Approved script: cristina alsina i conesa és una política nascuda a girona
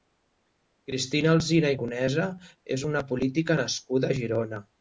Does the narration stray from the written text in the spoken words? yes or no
no